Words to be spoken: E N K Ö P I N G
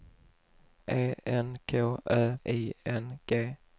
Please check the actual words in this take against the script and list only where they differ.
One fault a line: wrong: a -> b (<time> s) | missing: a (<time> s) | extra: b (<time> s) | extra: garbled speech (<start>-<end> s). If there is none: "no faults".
missing: P (2.4 s)